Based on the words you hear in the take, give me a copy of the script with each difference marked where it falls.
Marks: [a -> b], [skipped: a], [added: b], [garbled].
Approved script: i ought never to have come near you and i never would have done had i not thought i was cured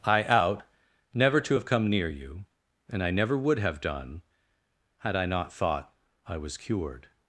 i [ought -> out] never to have come near you and i never would have done had i not thought i was cured